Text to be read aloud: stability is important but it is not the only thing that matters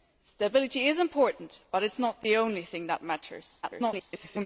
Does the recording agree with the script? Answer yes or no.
no